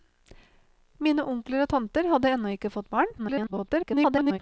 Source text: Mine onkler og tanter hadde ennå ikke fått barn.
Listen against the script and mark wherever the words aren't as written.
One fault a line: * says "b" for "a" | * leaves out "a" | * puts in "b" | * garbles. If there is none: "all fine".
* garbles